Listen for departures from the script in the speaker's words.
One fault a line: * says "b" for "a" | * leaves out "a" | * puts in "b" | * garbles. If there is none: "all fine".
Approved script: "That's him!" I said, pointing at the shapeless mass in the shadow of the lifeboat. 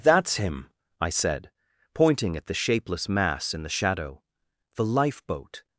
* leaves out "of"